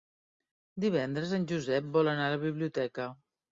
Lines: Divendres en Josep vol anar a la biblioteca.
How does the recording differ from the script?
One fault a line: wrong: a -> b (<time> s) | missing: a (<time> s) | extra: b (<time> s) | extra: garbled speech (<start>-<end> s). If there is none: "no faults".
no faults